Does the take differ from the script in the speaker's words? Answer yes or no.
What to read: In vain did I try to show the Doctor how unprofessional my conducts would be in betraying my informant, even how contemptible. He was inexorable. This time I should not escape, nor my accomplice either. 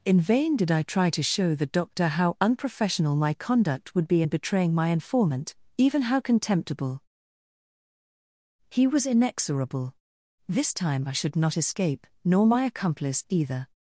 yes